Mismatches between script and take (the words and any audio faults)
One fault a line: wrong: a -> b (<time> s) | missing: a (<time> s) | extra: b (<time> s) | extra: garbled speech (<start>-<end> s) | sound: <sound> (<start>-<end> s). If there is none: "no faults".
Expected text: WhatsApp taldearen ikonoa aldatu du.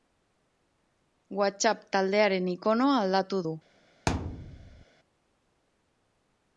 sound: thud (4.1-4.9 s)